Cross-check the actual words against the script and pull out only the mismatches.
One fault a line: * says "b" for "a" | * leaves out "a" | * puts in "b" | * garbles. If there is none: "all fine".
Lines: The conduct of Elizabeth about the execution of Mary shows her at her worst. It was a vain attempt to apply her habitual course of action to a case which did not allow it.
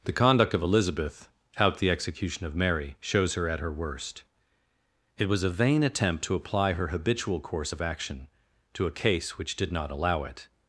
* says "out" for "about"